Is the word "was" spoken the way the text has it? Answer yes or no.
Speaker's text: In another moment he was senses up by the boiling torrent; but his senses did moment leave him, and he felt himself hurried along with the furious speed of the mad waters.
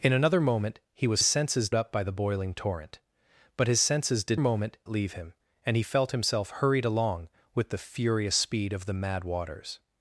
yes